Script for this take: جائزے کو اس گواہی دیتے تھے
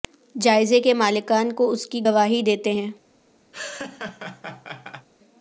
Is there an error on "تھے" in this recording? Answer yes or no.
yes